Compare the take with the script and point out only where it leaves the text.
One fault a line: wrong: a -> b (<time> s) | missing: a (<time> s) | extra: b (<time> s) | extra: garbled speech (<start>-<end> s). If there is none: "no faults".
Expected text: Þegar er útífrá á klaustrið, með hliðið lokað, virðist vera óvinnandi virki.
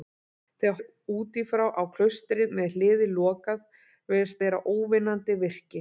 no faults